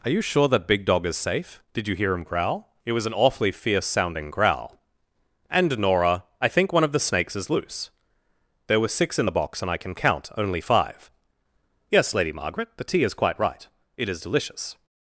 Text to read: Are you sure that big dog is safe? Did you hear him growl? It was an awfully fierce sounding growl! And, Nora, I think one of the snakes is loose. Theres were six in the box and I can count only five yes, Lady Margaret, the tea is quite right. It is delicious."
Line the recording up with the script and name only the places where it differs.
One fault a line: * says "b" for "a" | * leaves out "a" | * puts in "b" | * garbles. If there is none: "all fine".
* says "There" for "Theres"